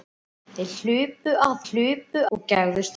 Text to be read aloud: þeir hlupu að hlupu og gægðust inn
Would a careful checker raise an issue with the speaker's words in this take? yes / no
no